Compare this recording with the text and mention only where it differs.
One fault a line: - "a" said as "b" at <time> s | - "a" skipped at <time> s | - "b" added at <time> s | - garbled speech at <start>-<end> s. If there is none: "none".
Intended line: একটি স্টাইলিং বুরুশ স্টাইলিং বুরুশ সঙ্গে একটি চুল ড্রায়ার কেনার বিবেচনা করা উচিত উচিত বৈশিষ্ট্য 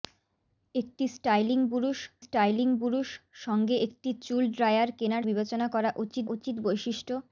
none